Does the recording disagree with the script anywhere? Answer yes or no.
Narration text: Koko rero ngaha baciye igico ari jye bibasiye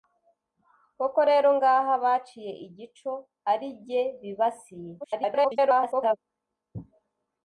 yes